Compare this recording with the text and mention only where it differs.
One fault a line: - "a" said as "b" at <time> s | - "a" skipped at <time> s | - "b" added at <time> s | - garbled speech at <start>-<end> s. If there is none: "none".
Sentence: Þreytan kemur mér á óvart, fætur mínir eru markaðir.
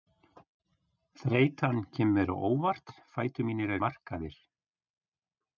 - "eru" skipped at 3.8 s